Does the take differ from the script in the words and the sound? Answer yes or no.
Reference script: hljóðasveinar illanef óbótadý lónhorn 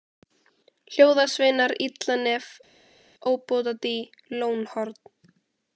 no